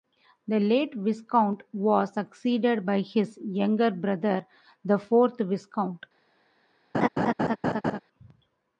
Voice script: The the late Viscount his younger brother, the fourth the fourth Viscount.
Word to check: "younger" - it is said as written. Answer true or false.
true